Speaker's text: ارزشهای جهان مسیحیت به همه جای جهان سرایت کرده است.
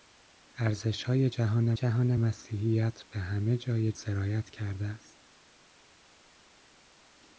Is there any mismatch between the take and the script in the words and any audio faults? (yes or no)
yes